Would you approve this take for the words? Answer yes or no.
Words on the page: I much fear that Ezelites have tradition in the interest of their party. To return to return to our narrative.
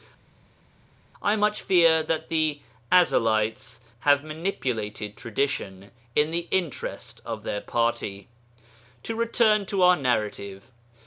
no